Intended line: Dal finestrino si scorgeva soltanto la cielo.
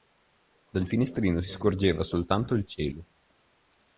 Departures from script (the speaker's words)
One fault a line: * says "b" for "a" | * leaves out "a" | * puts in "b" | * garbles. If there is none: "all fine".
* says "il" for "la"